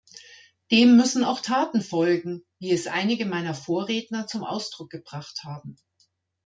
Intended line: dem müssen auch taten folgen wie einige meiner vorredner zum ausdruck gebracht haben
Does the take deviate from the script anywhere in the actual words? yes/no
yes